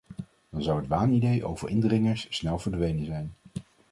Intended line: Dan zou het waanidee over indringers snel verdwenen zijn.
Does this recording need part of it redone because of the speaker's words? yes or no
no